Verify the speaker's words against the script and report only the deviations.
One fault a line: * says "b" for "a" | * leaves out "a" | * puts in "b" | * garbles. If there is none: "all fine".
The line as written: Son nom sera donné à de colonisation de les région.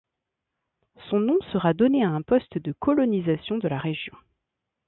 * puts in "un poste"
* says "la" for "les"